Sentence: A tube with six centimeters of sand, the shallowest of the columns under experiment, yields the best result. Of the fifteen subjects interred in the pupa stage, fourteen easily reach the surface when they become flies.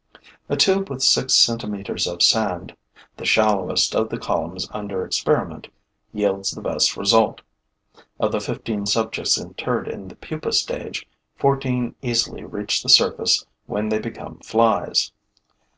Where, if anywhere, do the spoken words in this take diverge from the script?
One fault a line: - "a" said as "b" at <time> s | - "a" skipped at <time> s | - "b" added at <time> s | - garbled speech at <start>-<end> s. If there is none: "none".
none